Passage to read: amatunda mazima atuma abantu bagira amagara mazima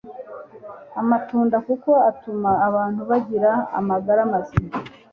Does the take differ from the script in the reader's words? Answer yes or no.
yes